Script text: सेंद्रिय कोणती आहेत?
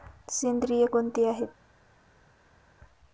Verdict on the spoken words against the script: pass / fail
pass